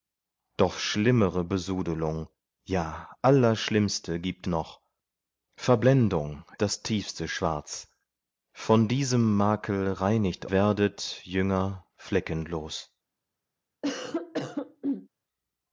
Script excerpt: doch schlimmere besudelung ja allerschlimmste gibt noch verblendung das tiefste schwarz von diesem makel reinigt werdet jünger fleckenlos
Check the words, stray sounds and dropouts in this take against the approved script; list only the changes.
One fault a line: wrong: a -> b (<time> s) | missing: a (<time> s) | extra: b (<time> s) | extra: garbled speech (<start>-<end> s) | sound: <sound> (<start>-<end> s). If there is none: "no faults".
sound: cough (13.8-15.1 s)